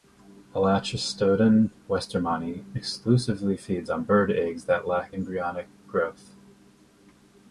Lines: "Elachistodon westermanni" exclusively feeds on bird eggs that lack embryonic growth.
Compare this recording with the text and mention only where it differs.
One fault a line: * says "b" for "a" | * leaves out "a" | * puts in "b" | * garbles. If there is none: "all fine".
all fine